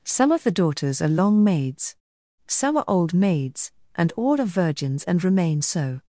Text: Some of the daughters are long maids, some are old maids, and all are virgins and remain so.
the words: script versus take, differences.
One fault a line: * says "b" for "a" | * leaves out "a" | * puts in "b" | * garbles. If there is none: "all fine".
all fine